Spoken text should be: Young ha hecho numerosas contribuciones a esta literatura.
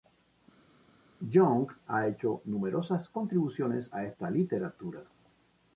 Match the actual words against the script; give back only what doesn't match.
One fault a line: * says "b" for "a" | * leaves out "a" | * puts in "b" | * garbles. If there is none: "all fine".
all fine